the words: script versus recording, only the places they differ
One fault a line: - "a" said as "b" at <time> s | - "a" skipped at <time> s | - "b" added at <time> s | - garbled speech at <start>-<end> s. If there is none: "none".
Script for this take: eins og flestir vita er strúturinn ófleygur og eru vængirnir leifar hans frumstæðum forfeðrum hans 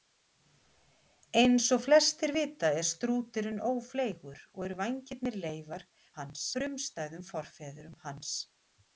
none